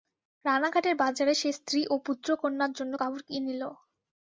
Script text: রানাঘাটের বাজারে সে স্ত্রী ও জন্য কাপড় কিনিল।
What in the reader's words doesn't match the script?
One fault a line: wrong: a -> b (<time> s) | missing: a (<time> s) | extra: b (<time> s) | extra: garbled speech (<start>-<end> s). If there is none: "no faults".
extra: পুত্রকন্যার (2.1 s)